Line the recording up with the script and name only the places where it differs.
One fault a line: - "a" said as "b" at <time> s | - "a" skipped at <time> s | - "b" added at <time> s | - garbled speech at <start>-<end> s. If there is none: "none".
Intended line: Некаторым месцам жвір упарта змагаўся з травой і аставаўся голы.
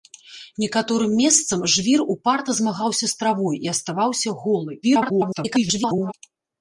- garbled speech at 4.8-6.1 s